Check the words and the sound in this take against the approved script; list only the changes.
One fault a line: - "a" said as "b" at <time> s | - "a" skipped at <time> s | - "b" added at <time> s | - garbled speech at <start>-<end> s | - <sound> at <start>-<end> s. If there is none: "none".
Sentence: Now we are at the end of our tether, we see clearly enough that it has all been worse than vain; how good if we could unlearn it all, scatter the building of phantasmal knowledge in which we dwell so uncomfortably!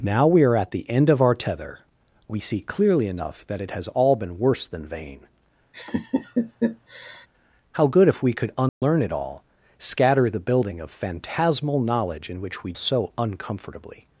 - laugh at 5.7-7.3 s
- dropout at 8.7-8.8 s
- "dwell" skipped at 12.7 s